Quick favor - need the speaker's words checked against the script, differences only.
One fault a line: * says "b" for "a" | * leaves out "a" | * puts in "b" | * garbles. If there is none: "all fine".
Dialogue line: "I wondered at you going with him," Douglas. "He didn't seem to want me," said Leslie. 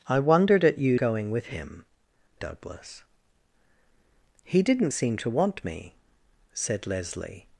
all fine